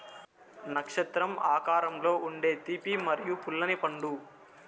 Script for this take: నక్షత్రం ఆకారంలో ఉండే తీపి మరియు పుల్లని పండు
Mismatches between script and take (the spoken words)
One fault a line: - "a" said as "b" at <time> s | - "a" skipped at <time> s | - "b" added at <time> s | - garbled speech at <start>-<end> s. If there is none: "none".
none